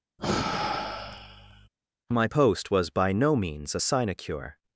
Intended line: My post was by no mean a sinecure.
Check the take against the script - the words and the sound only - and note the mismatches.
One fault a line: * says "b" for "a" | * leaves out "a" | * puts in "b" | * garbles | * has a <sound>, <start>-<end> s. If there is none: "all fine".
* has a sigh, 0.2-1.7 s
* says "means" for "mean"